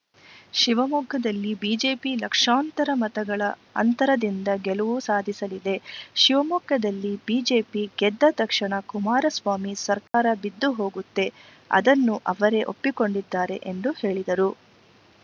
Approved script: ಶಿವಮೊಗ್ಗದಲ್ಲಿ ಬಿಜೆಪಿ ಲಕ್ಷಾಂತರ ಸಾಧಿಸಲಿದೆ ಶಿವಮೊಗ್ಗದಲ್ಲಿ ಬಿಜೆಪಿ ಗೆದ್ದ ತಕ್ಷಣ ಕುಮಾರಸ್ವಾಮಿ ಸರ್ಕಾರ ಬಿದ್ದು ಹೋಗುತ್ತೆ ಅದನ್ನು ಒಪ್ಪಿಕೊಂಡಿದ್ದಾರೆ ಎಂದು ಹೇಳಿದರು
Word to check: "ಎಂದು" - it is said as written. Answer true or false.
true